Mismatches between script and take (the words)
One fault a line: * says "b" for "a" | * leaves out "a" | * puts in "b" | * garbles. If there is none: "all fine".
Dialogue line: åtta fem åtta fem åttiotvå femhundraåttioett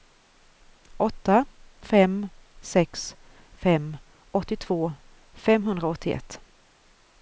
* says "sex" for "åtta"